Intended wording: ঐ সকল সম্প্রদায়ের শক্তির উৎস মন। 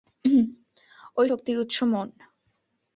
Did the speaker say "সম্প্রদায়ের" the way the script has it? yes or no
no